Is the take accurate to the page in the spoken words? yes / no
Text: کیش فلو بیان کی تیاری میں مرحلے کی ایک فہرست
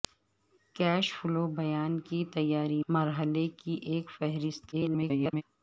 no